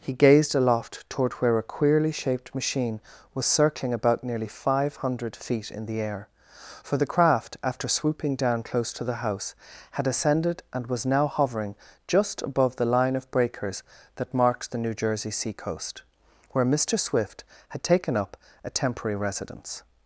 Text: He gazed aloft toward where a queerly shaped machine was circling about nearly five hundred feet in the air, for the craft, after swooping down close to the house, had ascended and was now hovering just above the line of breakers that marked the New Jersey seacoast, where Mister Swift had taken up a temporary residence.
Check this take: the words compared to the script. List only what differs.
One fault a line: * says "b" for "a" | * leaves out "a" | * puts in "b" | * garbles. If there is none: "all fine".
all fine